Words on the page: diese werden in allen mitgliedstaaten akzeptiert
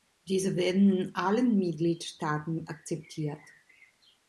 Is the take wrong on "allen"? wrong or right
right